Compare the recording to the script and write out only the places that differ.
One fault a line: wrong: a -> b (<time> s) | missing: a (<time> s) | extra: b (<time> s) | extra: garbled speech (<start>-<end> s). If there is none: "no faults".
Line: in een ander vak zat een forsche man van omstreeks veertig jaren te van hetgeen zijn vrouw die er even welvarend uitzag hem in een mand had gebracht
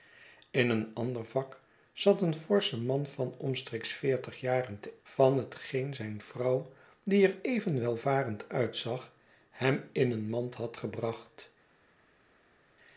no faults